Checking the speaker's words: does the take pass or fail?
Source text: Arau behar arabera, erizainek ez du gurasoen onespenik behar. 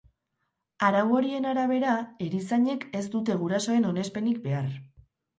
fail